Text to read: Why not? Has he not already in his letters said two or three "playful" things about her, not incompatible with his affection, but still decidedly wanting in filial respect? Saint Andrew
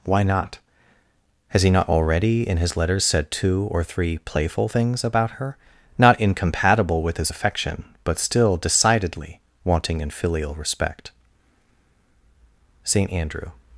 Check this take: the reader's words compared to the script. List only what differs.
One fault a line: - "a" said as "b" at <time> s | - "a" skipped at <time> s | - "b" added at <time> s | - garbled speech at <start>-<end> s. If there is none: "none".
none